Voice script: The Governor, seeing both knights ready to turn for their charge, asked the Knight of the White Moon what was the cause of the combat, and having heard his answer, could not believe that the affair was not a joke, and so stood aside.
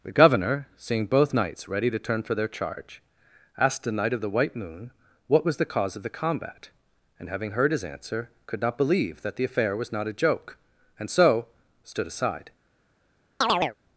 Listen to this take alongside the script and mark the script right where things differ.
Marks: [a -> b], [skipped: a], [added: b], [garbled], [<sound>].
The Governor, seeing both knights ready to turn for their charge, asked the Knight of the White Moon what was the cause of the combat, and having heard his answer, could not believe that the affair was not a joke, and so stood aside. [chirp]